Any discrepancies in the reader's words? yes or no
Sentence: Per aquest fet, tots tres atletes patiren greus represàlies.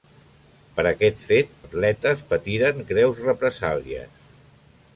yes